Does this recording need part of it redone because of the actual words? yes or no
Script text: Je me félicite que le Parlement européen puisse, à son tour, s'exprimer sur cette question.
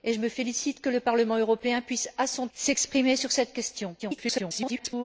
yes